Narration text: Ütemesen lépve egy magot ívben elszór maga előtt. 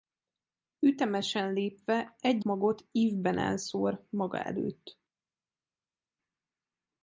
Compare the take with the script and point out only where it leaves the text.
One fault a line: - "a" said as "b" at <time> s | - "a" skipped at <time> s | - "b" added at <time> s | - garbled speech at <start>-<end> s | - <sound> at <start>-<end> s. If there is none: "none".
none